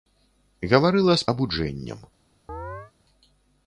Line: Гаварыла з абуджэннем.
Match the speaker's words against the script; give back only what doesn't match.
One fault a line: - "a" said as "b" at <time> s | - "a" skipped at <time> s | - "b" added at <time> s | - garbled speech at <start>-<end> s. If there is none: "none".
none